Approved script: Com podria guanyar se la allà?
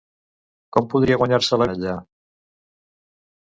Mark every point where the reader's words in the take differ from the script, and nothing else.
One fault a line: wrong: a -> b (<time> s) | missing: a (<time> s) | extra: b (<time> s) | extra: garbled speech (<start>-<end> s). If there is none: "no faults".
no faults